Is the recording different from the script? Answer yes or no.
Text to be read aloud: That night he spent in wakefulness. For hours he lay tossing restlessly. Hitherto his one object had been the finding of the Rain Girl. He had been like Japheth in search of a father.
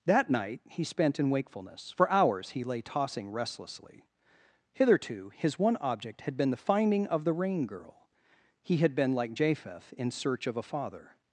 no